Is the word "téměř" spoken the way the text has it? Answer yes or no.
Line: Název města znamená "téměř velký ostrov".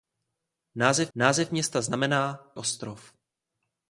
no